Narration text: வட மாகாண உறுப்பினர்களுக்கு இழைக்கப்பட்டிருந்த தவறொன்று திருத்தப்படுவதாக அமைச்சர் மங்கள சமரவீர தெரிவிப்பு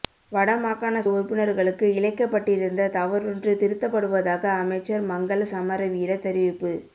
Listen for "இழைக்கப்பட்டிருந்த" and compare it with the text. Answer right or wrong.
right